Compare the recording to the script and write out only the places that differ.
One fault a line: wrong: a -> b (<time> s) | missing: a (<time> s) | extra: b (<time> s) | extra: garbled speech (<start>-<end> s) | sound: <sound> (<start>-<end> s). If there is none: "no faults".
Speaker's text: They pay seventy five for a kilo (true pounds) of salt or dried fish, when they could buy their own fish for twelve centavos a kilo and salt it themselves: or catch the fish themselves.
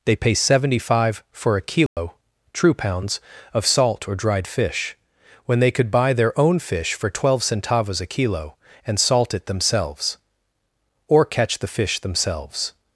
sound: dropout (1.9-2.0 s)